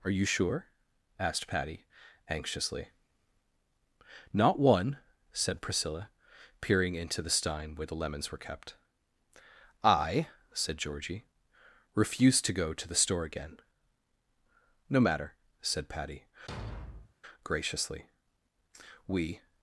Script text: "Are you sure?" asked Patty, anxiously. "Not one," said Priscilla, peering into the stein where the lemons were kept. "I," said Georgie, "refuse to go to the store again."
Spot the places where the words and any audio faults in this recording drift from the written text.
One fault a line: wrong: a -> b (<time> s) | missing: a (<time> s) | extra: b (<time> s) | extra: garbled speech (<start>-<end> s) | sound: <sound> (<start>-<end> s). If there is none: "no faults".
extra: No matter said Patty graciously we (14.9 s)
sound: thud (16.5-17.1 s)